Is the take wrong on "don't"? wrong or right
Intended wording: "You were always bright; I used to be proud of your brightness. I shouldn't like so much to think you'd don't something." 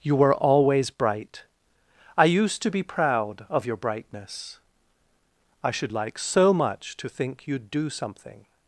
wrong